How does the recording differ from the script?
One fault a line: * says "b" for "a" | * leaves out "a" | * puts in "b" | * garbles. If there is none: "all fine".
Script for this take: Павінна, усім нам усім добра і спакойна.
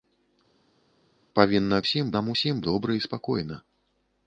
all fine